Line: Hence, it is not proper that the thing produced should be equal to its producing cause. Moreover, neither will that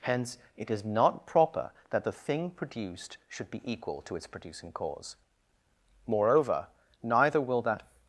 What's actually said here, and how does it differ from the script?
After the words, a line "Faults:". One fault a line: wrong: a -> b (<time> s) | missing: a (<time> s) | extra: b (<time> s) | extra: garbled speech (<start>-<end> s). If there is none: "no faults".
Hence, it is not proper that the thing produced should be equal to its producing cause. Moreover, neither will that
Faults:
no faults